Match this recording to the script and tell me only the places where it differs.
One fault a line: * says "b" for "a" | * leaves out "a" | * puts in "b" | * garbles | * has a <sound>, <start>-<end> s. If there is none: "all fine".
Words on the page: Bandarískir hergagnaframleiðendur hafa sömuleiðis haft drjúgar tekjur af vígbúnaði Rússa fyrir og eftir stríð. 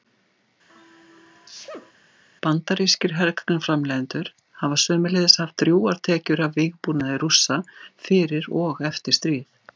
* has a sneeze, 0.7-1.9 s